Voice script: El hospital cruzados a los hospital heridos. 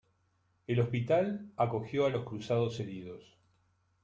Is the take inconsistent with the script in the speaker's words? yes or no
yes